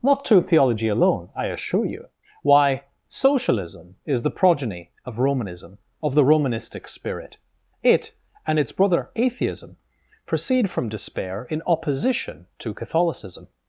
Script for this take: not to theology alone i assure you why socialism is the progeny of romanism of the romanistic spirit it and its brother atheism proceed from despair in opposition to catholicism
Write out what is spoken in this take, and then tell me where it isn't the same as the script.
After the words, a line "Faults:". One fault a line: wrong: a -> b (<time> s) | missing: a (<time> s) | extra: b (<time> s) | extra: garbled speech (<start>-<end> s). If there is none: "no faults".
not to theology alone i assure you why socialism is the progeny of romanism of the romanistic spirit it and its brother atheism proceed from despair in opposition to catholicism
Faults:
no faults